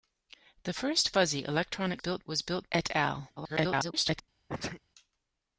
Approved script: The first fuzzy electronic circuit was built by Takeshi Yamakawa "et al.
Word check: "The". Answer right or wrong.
right